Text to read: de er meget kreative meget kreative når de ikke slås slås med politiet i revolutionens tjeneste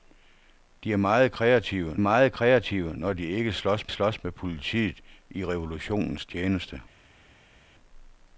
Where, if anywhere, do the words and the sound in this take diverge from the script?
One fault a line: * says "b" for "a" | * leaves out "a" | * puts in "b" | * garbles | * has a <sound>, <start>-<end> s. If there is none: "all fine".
all fine